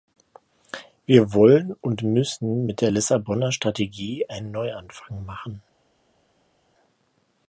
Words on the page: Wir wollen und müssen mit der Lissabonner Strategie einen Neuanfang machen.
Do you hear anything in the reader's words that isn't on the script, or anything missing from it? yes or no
no